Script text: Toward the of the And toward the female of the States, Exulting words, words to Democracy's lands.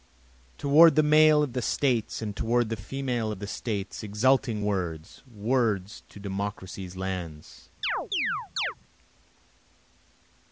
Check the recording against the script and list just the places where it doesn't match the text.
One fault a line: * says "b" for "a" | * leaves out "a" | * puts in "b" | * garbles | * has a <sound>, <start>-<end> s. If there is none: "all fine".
* puts in "male"
* puts in "States"
* has a chirp, 7.8-8.7 s